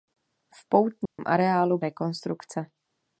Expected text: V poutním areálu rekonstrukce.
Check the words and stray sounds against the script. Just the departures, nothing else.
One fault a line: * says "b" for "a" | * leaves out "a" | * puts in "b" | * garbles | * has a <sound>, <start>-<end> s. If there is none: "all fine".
* has a dropout, 1.1-1.2 s